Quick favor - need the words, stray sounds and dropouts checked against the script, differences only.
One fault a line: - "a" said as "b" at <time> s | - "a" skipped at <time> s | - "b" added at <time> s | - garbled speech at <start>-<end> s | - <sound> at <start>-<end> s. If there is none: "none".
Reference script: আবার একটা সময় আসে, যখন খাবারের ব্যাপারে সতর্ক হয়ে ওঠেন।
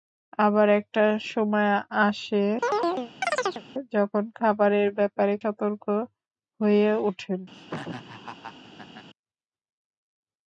- chirp at 2.6-3.6 s
- laugh at 7.5-9.1 s